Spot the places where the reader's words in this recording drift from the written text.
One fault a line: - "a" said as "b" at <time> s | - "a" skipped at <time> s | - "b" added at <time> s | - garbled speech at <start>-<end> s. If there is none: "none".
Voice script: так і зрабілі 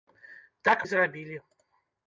none